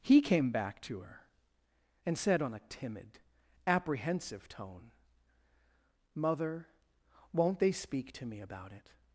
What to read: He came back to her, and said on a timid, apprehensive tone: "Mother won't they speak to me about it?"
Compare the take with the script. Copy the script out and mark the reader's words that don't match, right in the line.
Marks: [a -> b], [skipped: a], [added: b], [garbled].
He came back to her, and said on a timid, apprehensive tone: "Mother won't they speak to me about it?"